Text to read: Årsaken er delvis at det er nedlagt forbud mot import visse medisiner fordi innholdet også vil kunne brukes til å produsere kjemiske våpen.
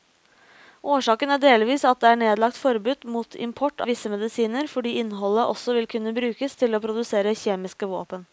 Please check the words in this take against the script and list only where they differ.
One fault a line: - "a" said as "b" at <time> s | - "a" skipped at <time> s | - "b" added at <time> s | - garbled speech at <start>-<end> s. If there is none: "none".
none